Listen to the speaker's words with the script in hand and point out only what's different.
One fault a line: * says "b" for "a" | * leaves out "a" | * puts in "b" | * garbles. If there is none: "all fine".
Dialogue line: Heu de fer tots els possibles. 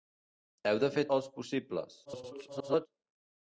* leaves out "tots"
* garbles